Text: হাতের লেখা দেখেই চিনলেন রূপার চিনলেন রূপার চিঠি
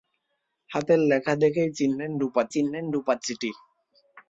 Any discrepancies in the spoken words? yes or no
no